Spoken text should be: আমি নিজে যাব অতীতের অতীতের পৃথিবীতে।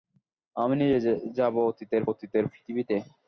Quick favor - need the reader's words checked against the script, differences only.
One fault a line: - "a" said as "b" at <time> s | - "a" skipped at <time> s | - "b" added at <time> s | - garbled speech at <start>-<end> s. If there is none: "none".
none